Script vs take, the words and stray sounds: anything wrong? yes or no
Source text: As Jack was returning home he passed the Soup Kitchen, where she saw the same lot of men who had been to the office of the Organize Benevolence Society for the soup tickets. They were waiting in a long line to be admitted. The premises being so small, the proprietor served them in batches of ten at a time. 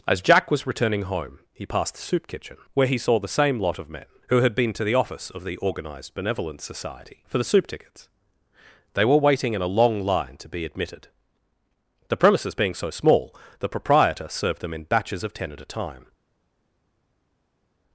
yes